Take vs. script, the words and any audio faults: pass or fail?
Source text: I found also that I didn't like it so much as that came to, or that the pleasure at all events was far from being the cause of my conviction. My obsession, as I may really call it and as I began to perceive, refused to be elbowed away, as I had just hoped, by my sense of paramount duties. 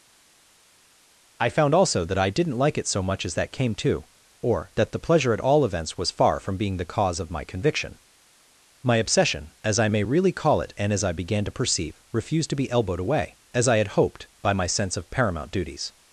fail